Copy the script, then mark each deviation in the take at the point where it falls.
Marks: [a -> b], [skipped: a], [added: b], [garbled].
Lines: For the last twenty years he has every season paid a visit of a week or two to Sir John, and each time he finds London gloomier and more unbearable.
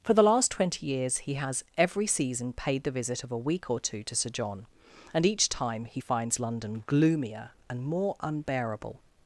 For the last twenty years he has every season paid [a -> the] visit of a week or two to Sir John, and each time he finds London gloomier and more unbearable.